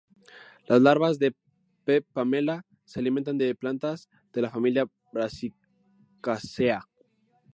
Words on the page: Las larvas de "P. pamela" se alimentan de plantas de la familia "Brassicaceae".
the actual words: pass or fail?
pass